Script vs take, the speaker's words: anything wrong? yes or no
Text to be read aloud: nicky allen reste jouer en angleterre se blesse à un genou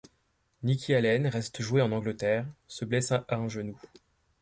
no